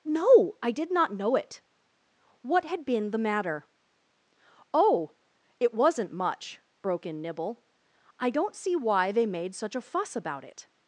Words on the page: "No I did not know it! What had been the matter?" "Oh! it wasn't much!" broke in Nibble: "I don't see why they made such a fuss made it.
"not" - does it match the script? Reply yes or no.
yes